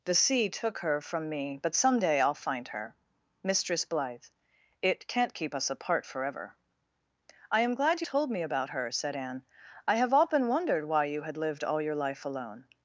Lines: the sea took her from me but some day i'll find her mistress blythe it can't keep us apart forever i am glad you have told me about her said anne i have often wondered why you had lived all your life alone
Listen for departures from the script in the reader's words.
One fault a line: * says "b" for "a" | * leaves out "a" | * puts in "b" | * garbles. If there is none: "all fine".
* leaves out "have"